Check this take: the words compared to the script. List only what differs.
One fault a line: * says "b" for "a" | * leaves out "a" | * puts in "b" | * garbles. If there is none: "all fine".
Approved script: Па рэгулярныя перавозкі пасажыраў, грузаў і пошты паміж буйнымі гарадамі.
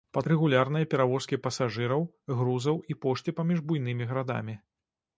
all fine